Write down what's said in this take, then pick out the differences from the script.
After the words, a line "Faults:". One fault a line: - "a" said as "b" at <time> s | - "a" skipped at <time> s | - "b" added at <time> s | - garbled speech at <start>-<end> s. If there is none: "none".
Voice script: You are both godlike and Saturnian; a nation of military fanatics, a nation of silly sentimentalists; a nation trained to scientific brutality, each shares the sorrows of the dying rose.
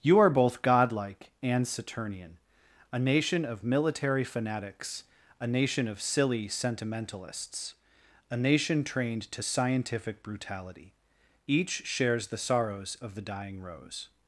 You are both godlike and Saturnian; a nation of military fanatics, a nation of silly sentimentalists; a nation trained to scientific brutality, each shares the sorrows of the dying rose.
Faults:
none